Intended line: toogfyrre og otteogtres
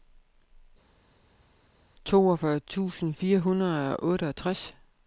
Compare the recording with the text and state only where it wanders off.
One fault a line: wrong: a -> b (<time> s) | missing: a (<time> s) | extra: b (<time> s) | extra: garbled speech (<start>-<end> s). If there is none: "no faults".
extra: tusind fire hundrede (2.6 s)